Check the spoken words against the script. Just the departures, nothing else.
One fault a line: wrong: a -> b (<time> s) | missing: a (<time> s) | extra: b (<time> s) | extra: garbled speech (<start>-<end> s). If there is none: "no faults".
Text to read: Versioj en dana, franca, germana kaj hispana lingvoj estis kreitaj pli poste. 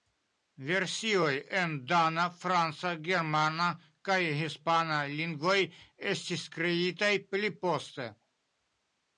no faults